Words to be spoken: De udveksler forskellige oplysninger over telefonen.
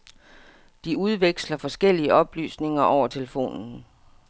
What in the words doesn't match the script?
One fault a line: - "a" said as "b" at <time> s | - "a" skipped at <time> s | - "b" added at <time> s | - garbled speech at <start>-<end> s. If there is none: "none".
none